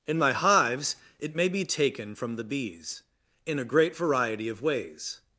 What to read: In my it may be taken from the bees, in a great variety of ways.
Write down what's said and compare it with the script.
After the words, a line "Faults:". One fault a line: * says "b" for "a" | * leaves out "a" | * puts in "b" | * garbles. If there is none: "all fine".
In my hives, it may be taken from the bees, in a great variety of ways.
Faults:
* puts in "hives"